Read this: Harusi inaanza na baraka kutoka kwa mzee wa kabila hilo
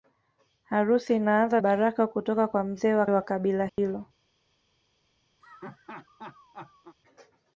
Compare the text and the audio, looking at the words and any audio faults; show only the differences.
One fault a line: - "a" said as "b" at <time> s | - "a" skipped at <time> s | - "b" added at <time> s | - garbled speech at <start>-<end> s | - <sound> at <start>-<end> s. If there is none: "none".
- "na" skipped at 1.6 s
- "wa" added at 3.1 s
- dropout at 3.7-3.8 s
- laugh at 5.4-7.0 s